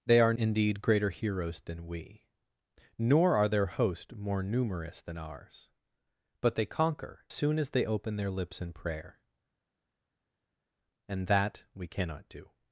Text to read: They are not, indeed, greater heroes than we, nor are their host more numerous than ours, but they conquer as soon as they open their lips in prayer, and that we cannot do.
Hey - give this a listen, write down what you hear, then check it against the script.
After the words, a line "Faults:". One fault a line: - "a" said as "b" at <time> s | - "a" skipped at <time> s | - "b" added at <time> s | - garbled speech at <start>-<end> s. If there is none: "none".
They are indeed, greater heroes than we, nor are their host more numerous than ours, but they conquer soon as they open their lips in prayer, and that we cannot do.
Faults:
- "not" skipped at 0.3 s
- "as" skipped at 7.2 s